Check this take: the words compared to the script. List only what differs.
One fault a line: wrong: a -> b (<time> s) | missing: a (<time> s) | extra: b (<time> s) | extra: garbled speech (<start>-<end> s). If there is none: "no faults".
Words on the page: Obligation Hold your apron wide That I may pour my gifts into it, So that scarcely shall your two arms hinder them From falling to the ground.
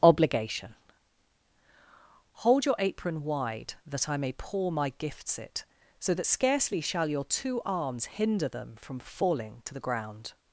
missing: into (5.4 s)